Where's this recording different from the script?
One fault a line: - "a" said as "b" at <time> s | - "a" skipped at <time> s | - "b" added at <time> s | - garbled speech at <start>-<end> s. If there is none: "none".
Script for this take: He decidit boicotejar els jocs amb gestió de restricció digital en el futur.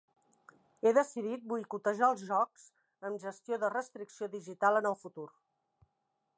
none